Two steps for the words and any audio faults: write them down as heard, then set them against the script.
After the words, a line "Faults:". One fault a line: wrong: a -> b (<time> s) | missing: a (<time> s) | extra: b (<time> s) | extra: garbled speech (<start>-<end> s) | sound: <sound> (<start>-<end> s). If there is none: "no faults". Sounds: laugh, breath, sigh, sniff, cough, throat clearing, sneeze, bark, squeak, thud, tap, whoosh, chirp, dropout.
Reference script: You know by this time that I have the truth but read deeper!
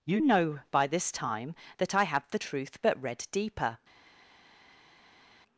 You know by this time that I have the truth but read deeper!
Faults:
no faults